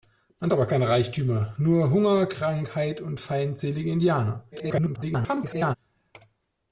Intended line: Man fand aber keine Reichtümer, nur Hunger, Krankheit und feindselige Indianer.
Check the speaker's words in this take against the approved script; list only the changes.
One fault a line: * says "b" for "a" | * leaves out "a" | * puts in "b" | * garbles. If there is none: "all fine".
* leaves out "fand"
* garbles